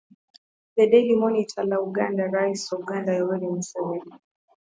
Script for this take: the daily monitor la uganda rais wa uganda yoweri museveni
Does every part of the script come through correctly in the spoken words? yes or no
no